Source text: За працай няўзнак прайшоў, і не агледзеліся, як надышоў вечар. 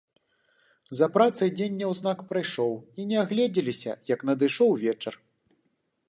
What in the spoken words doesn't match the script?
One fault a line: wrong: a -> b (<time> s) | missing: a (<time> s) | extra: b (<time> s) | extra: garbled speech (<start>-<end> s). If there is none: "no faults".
extra: дзень (1.6 s)